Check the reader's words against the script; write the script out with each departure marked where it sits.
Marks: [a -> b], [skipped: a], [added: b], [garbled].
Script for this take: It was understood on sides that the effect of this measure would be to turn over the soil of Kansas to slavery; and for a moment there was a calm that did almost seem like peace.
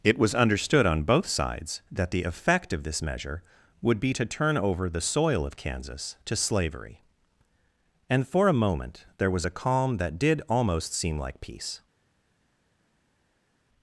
It was understood on [added: both] sides that the effect of this measure would be to turn over the soil of Kansas to slavery; and for a moment there was a calm that did almost seem like peace.